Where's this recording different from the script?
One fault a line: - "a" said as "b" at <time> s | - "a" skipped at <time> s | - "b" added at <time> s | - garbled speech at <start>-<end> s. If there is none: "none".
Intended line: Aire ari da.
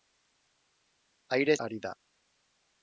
none